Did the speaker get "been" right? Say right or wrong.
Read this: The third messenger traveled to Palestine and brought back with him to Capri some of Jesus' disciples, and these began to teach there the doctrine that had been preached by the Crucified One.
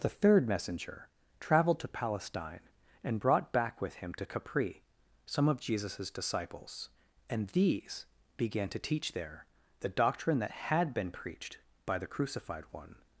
right